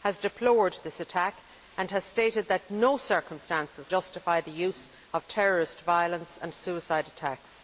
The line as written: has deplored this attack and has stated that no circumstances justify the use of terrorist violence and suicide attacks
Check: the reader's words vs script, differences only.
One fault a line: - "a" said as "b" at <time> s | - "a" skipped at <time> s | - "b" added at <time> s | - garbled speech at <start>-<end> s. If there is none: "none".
none